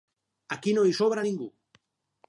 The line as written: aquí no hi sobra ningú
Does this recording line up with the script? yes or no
yes